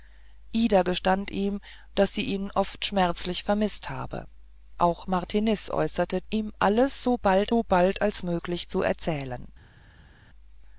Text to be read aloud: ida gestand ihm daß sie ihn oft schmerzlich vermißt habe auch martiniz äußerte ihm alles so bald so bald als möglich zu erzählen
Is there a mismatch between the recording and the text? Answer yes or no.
no